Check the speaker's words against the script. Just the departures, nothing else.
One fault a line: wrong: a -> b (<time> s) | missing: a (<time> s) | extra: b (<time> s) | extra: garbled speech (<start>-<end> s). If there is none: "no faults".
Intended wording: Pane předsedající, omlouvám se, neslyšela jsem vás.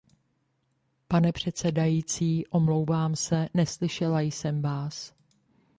no faults